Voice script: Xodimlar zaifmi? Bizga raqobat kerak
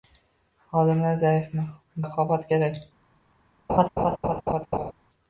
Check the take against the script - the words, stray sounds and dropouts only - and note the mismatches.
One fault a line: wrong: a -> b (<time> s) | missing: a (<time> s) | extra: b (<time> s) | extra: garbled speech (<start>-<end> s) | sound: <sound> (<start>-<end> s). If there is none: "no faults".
missing: Bizga (1.7 s)
sound: laugh (3.7-4.9 s)